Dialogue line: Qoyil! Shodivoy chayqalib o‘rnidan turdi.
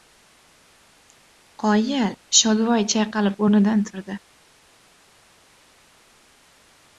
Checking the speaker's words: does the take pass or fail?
pass